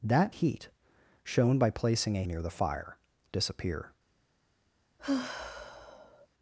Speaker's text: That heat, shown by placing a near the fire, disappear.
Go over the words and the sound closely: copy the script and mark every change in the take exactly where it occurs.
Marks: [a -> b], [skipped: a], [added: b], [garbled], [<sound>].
That heat, shown by placing a near the fire, disappear. [sigh]